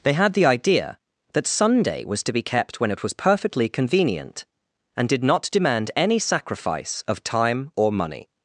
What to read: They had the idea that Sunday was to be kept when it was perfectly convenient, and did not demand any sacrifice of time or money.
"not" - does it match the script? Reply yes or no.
yes